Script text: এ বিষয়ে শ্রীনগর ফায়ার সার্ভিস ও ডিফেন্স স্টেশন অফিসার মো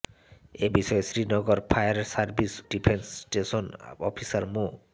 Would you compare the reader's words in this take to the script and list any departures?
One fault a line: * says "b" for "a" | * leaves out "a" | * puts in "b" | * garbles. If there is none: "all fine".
* leaves out "ও"